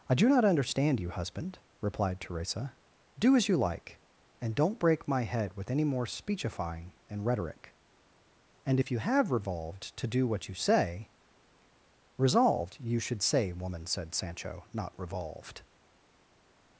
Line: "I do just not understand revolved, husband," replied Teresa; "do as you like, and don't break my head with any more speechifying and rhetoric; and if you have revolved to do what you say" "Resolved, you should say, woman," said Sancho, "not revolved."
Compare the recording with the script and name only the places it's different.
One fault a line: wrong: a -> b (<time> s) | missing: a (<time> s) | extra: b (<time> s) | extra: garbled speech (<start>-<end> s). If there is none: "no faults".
missing: just (0.3 s)
wrong: revolved -> you (1.0 s)